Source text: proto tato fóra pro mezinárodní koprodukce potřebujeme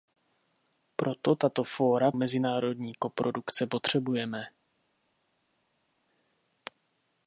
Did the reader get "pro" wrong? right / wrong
wrong